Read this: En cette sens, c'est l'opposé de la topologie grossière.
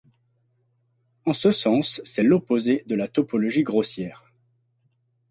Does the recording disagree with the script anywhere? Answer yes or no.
yes